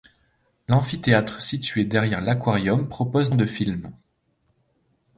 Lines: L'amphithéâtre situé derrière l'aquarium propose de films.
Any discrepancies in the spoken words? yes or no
no